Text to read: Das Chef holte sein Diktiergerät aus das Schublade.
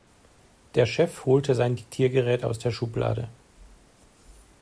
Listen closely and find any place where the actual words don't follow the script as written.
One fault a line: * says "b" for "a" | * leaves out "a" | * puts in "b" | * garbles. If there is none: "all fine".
* says "Der" for "Das"
* says "der" for "das"